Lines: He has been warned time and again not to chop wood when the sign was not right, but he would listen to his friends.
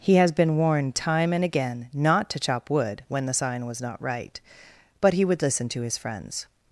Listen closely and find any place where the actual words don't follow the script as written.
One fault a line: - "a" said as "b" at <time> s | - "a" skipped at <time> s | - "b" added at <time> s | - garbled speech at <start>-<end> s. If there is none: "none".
none